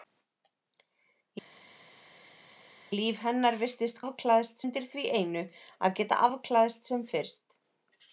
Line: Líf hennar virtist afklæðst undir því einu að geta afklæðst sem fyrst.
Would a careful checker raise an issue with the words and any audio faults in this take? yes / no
no